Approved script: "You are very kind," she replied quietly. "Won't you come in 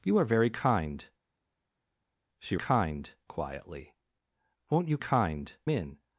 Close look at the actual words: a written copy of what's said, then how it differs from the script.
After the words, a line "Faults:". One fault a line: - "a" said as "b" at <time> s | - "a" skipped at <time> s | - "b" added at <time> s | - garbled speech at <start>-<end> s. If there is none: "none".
"You are very kind," she kind quietly. "Won't you kind in
Faults:
- "replied" said as "kind" at 2.5 s
- "come" said as "kind" at 5.0 s